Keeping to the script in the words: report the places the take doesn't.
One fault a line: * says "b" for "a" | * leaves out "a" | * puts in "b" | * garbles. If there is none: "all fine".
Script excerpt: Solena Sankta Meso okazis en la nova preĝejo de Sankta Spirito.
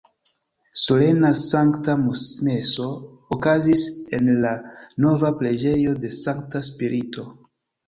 all fine